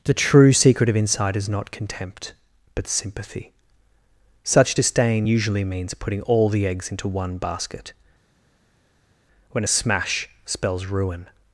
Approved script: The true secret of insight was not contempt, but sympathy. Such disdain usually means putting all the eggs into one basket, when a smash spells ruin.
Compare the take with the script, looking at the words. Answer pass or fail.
fail